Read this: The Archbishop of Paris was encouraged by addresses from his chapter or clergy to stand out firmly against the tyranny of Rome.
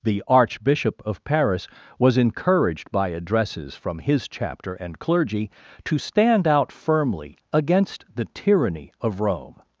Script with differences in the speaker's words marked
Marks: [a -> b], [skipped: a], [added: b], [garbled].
The Archbishop of Paris was encouraged by addresses from his chapter [or -> and] clergy to stand out firmly against the tyranny of Rome.